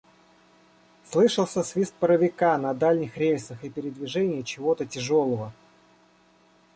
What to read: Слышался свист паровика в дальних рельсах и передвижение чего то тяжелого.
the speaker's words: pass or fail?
fail